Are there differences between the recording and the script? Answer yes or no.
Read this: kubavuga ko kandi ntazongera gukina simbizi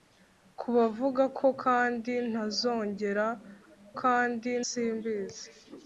yes